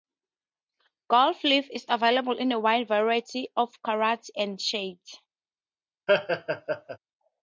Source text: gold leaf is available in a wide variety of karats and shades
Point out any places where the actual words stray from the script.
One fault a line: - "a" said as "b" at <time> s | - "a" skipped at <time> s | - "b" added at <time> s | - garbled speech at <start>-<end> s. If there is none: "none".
none